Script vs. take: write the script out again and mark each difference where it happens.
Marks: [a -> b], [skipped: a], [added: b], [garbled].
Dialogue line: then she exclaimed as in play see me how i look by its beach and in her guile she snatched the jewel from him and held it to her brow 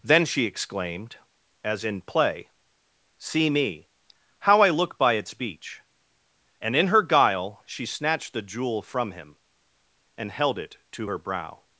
then she exclaimed as in play see me how i look by its beach and in her guile she snatched the jewel from him and held it to her brow